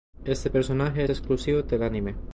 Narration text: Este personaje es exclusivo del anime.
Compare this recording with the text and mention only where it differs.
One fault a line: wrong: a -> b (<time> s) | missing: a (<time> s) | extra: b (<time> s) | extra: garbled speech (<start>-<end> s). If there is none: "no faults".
missing: es (1.0 s)